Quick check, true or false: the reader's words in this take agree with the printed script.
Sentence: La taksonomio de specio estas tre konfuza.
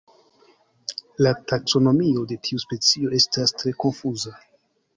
false